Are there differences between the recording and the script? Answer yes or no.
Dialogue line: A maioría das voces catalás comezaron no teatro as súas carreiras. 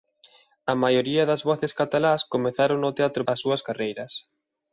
no